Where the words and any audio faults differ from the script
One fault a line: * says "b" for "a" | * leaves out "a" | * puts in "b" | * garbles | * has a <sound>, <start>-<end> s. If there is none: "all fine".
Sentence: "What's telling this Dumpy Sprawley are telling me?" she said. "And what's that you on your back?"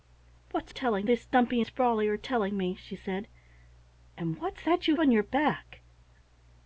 all fine